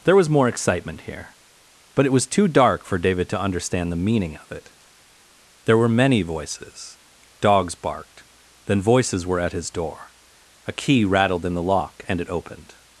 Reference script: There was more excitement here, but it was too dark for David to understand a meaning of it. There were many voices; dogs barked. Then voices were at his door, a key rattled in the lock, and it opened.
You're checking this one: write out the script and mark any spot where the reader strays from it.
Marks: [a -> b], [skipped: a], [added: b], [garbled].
There was more excitement here, but it was too dark for David to understand [a -> the] meaning of it. There were many voices; dogs barked. Then voices were at his door, a key rattled in the lock, and it opened.